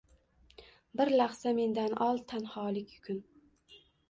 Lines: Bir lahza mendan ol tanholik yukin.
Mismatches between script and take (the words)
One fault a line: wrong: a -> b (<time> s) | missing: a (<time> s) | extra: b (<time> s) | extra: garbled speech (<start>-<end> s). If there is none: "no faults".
no faults